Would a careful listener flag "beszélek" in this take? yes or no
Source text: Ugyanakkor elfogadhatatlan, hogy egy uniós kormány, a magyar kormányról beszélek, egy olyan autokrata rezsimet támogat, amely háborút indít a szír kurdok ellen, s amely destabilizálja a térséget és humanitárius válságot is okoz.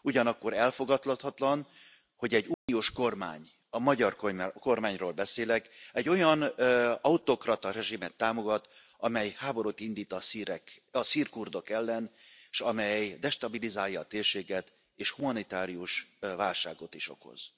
no